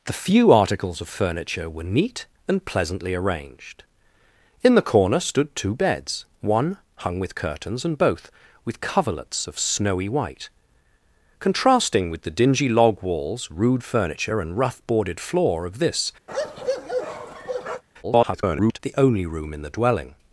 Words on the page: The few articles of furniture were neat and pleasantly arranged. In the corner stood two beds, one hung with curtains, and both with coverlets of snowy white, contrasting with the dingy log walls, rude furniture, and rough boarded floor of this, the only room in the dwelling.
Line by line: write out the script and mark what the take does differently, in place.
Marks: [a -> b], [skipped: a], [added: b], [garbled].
The few articles of furniture were neat and pleasantly arranged. In the corner stood two beds, one hung with curtains, and both with coverlets of snowy white, contrasting with the dingy log walls, rude furniture, and rough boarded floor of this, [garbled] the only room in the dwelling.